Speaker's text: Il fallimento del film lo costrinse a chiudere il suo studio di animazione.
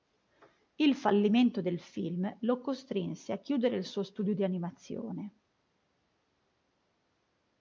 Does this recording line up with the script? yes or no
yes